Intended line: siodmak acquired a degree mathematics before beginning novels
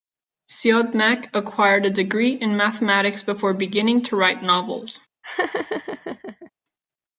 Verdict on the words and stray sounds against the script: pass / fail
fail